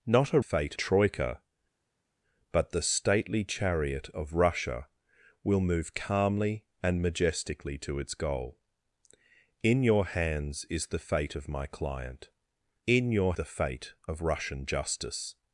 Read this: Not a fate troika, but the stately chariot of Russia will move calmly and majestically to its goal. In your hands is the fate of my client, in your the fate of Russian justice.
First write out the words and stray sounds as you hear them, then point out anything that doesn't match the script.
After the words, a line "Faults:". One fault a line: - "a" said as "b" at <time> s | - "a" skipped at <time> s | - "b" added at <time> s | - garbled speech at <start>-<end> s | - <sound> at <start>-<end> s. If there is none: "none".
Not a fate troika, but the stately chariot of Russia will move calmly and majestically to its goal. In your hands is the fate of my client, in your the fate of Russian justice.
Faults:
none